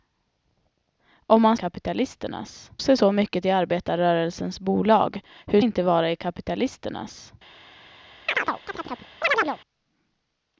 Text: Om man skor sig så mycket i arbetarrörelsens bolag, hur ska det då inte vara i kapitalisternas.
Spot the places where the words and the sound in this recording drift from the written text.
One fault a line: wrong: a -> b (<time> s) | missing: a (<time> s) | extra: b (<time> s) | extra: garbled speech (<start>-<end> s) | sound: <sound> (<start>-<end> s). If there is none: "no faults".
wrong: skor -> kapitalisternas (1.5 s)
missing: ska det då (5.6 s)
sound: chirp (8.3-9.6 s)